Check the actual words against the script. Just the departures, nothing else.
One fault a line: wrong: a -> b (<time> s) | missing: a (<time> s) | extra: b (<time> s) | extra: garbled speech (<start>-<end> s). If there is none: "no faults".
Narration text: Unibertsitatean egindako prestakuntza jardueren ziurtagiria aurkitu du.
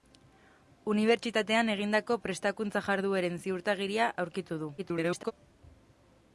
extra: garbled speech (4.8-5.3 s)